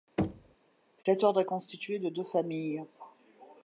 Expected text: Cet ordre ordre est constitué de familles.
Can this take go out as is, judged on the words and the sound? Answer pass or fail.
fail